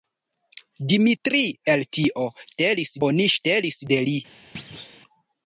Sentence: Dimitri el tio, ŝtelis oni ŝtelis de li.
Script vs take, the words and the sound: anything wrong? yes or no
yes